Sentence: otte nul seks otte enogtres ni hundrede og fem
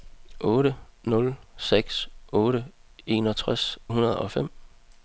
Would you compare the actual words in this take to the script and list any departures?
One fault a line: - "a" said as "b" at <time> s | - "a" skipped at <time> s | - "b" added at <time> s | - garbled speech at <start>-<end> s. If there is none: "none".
- "ni" skipped at 3.6 s